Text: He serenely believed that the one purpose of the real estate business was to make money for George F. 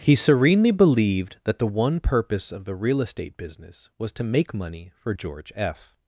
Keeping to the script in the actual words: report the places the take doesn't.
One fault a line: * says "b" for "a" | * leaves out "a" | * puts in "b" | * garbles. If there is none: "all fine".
all fine